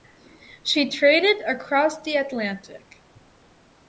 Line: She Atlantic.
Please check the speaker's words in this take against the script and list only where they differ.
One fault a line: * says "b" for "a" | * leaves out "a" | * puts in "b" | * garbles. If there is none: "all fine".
* puts in "traded across the"